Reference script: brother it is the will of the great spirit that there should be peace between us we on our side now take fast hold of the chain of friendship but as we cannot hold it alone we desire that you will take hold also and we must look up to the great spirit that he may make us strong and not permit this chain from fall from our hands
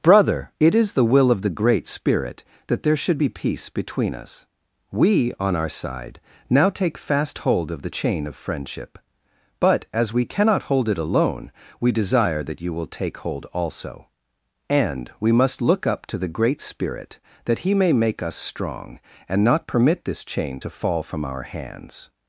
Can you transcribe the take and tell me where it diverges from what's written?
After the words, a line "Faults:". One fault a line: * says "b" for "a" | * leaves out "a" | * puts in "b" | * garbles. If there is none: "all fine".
brother it is the will of the great spirit that there should be peace between us we on our side now take fast hold of the chain of friendship but as we cannot hold it alone we desire that you will take hold also and we must look up to the great spirit that he may make us strong and not permit this chain to fall from our hands
Faults:
* says "to" for "from"